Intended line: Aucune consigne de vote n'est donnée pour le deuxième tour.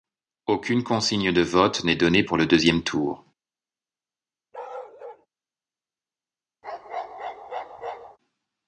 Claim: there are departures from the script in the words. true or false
false